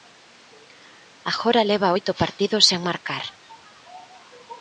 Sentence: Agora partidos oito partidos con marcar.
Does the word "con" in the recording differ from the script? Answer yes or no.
yes